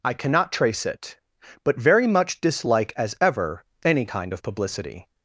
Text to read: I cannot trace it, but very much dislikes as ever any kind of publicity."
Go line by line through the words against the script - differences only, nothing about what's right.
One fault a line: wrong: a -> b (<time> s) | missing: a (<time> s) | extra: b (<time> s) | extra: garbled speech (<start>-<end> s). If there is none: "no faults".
wrong: dislikes -> dislike (2.4 s)